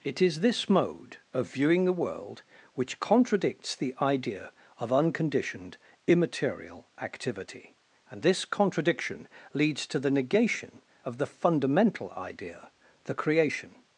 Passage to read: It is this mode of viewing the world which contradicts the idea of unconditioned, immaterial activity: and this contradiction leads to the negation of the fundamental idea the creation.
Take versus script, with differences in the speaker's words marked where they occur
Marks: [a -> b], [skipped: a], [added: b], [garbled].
It is this mode of viewing the world which contradicts the idea of unconditioned, immaterial activity: and this contradiction leads to the negation of the fundamental idea the creation.